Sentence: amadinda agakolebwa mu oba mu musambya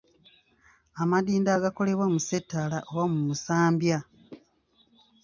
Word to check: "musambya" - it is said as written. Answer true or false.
true